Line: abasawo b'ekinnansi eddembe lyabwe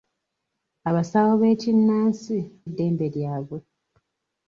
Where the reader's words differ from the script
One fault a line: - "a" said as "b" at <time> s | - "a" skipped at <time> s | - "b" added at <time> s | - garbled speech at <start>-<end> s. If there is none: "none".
none